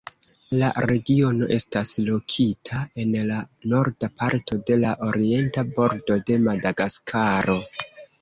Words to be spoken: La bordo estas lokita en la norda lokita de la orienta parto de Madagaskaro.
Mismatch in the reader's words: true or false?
true